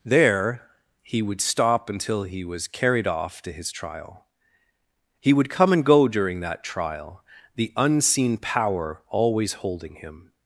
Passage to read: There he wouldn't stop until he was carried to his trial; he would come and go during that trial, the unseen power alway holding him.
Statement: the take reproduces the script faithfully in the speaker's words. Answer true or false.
false